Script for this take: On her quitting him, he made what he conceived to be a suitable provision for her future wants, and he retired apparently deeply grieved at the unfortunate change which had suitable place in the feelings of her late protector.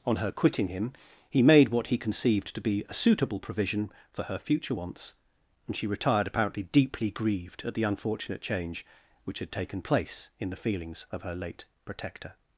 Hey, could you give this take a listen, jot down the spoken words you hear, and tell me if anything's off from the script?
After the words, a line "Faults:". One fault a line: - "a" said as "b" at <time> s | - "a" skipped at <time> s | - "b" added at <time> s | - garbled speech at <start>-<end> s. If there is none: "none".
On her quitting him, he made what he conceived to be a suitable provision for her future wants, and she retired apparently deeply grieved at the unfortunate change which had taken place in the feelings of her late protector.
Faults:
- "he" said as "she" at 5.7 s
- "suitable" said as "taken" at 9.5 s